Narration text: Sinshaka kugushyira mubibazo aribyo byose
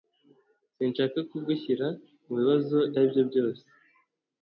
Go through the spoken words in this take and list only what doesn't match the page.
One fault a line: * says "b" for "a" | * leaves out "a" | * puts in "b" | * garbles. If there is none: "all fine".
all fine